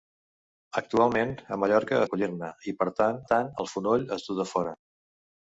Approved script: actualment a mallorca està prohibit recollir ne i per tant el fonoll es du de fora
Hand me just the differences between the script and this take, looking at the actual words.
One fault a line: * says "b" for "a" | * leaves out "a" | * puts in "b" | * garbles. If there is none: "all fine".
* leaves out "està prohibit"
* puts in "tant"